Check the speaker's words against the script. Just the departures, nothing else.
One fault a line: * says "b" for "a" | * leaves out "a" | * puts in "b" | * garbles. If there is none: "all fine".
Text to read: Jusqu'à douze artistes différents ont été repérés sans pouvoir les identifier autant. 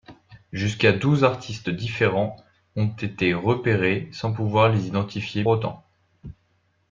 all fine